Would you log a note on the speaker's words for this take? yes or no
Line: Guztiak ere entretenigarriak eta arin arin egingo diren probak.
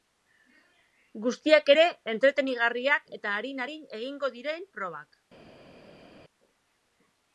no